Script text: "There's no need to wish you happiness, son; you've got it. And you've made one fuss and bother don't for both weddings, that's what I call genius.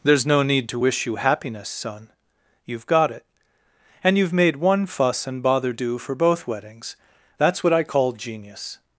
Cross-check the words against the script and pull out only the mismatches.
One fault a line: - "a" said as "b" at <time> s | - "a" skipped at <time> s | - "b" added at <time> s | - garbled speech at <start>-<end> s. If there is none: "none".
- "don't" said as "do" at 5.7 s